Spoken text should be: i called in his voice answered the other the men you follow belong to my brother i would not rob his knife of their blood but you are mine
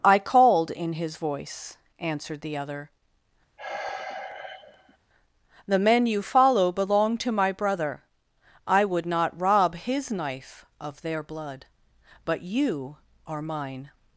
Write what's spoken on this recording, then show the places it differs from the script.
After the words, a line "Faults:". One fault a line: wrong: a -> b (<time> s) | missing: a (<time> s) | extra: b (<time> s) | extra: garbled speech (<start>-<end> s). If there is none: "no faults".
i called in his voice answered the other the men you follow belong to my brother i would not rob his knife of their blood but you are mine
Faults:
no faults